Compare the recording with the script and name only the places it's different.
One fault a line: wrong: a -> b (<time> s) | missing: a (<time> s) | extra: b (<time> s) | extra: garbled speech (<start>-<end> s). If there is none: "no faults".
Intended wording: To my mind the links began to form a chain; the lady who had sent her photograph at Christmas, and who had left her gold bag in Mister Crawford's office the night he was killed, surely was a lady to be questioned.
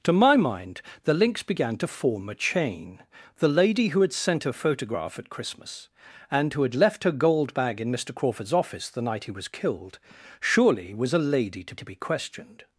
extra: to (11.7 s)